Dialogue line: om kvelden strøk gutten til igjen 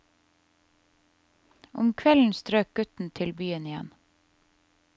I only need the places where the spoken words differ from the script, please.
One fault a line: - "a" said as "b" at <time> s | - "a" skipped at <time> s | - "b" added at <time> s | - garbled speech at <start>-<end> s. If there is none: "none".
- "byen" added at 3.4 s